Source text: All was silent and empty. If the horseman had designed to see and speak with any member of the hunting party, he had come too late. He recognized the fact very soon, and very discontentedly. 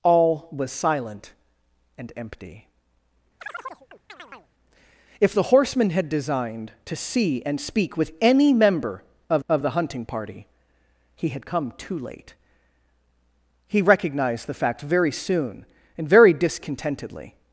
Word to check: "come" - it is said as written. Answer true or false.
true